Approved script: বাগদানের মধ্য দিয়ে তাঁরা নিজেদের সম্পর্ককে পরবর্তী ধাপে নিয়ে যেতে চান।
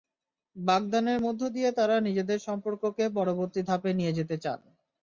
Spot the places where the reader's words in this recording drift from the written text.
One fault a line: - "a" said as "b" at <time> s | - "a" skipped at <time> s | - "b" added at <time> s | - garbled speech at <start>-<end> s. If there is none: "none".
none